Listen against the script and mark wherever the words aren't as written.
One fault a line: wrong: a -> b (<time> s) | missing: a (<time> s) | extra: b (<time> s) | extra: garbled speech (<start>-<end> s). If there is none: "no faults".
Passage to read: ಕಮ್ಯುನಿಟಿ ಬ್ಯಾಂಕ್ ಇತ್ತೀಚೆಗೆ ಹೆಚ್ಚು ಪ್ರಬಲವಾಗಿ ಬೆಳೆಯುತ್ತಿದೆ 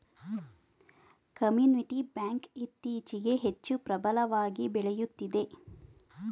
no faults